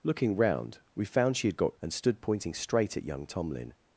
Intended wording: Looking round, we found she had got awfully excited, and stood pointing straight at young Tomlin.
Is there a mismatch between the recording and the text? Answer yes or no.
yes